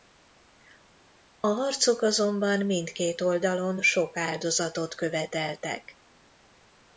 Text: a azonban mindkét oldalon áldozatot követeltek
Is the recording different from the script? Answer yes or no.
yes